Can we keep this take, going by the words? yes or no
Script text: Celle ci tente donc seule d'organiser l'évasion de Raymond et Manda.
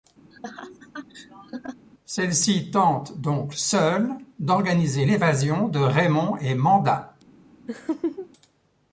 yes